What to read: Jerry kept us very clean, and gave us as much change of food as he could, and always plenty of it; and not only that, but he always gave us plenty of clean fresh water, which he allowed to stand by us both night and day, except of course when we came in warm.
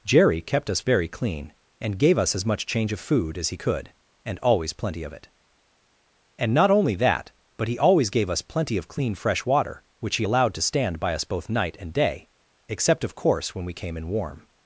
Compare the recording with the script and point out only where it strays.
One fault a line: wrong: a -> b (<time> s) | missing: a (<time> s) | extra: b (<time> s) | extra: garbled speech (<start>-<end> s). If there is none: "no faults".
no faults